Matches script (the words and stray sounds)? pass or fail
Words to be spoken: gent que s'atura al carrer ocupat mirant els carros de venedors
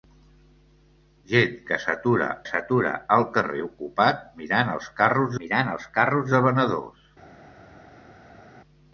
fail